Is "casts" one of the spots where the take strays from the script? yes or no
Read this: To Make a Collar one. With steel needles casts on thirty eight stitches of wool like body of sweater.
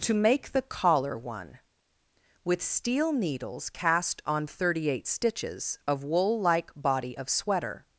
yes